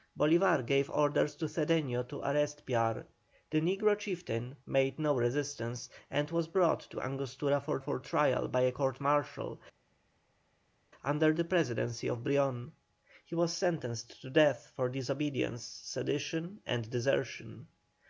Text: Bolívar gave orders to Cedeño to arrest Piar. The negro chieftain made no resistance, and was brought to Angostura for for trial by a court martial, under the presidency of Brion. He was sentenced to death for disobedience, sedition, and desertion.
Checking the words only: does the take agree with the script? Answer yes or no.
yes